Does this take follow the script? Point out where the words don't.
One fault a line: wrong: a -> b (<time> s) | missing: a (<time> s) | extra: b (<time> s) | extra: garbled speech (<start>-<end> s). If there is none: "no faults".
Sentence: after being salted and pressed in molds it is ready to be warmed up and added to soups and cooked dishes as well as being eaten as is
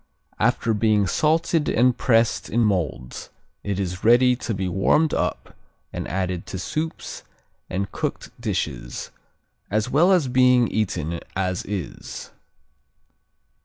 no faults